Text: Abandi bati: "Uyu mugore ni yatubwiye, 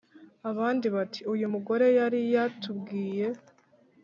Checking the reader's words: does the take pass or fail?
fail